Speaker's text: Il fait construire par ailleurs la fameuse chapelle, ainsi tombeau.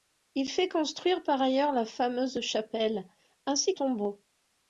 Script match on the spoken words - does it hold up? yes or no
yes